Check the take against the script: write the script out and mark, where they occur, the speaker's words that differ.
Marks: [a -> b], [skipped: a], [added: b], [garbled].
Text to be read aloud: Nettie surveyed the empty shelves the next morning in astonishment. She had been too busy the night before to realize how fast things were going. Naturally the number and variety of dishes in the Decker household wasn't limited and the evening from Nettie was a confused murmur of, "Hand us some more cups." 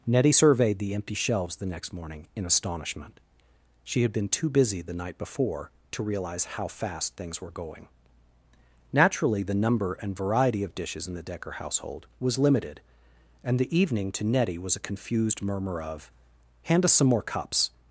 Nettie surveyed the empty shelves the next morning in astonishment. She had been too busy the night before to realize how fast things were going. Naturally the number and variety of dishes in the Decker household [wasn't -> was] limited and the evening [from -> to] Nettie was a confused murmur of, "Hand us some more cups."